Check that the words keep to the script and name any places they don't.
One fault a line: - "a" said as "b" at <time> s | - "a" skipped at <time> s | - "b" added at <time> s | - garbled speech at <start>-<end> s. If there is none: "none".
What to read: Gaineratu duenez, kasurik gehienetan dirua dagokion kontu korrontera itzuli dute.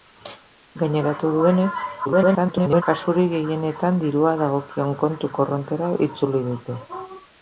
- garbled speech at 2.1-2.8 s